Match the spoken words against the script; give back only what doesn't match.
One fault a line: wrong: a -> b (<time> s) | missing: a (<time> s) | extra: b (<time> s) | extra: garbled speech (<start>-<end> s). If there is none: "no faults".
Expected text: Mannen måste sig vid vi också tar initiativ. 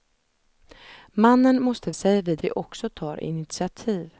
no faults